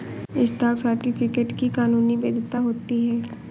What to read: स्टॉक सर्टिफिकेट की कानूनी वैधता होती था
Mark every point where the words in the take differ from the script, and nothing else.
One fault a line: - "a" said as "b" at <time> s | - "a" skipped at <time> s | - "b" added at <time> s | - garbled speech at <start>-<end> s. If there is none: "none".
- "था" said as "है" at 3.1 s